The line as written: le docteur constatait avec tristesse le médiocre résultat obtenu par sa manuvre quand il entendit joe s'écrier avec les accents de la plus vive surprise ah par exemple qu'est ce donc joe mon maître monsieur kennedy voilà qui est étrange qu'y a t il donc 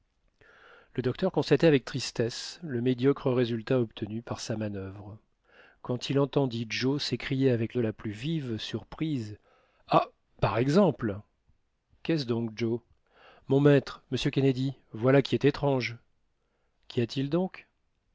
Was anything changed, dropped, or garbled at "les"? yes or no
yes